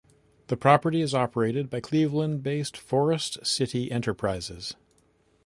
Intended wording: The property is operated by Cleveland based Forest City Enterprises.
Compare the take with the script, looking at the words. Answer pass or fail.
pass